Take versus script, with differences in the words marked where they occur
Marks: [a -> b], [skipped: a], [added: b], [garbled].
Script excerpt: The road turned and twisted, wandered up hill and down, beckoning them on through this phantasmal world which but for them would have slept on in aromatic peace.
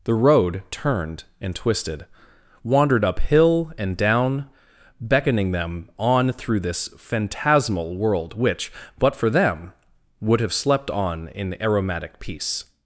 The road turned and twisted, wandered up hill and down, beckoning them on through this phantasmal world which but for them would have slept on in aromatic peace.